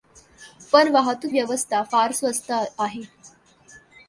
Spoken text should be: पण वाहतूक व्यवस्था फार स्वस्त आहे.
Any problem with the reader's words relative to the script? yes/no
no